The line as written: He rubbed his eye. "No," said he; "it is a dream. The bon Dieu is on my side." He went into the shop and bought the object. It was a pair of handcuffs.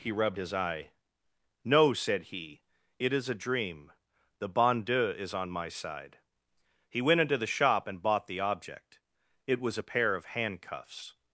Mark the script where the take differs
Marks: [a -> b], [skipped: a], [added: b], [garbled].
He rubbed his eye. "No," said he; "it is a dream. The bon Dieu is on my side." He went into the shop and bought the object. It was a pair of handcuffs.